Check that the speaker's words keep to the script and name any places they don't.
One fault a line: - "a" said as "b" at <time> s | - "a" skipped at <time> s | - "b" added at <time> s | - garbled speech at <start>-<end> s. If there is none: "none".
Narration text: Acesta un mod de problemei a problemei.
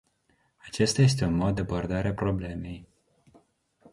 - "este" added at 1.0 s
- "problemei" said as "abordare" at 1.6 s